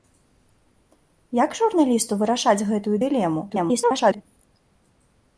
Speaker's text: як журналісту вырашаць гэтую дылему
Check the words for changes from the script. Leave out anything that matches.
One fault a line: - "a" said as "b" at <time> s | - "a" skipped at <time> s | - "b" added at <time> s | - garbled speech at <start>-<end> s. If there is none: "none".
- garbled speech at 3.5-4.2 s